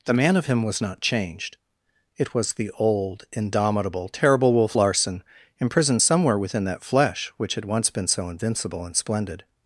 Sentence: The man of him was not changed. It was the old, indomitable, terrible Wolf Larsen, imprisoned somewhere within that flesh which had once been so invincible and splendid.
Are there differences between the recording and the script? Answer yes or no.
no